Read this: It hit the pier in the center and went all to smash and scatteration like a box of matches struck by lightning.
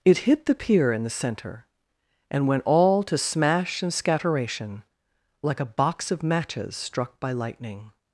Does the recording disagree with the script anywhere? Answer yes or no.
no